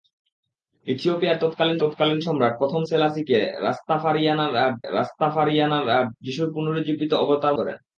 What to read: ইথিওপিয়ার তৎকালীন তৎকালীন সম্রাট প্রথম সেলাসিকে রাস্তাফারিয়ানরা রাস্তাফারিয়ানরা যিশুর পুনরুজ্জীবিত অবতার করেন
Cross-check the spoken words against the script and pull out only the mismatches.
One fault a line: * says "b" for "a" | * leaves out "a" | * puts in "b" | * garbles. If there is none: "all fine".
all fine